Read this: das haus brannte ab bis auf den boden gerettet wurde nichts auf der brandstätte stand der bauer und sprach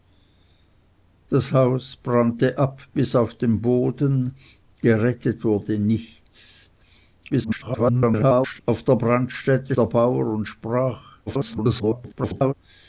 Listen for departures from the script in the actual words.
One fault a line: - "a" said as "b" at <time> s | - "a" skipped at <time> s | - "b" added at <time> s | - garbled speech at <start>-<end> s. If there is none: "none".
- garbled speech at 7.3-8.6 s
- "stand" skipped at 9.8 s
- garbled speech at 11.3-12.5 s